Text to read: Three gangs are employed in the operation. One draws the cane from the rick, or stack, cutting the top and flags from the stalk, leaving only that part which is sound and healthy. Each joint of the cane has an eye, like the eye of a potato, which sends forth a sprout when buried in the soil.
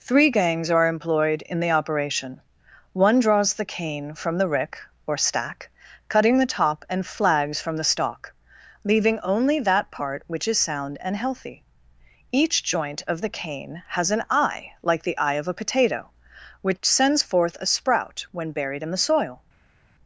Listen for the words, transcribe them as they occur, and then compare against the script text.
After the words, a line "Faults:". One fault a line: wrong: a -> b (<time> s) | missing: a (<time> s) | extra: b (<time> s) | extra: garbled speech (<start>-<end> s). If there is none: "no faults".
Three gangs are employed in the operation. One draws the cane from the rick, or stack, cutting the top and flags from the stalk, leaving only that part which is sound and healthy. Each joint of the cane has an eye, like the eye of a potato, which sends forth a sprout when buried in the soil.
Faults:
no faults